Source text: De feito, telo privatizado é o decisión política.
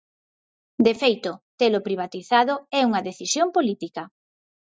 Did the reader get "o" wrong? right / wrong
wrong